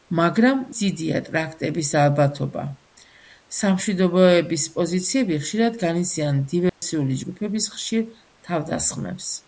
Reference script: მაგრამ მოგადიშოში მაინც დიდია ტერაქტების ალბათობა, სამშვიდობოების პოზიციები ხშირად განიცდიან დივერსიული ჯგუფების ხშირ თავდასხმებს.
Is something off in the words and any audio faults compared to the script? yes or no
yes